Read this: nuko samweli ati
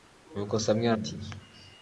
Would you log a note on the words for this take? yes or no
no